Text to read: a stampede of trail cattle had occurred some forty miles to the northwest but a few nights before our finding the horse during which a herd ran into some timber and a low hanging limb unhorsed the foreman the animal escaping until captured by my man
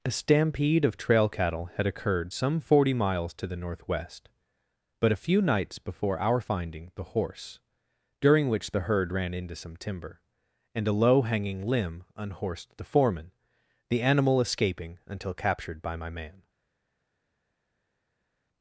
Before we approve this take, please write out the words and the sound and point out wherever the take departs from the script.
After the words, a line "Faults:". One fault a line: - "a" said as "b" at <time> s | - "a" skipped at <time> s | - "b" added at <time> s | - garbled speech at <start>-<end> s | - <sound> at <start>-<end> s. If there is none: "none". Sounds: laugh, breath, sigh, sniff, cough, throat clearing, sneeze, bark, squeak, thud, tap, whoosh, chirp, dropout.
a stampede of trail cattle had occurred some forty miles to the northwest but a few nights before our finding the horse during which the herd ran into some timber and a low hanging limb unhorsed the foreman the animal escaping until captured by my man
Faults:
- "a" said as "the" at 8.7 s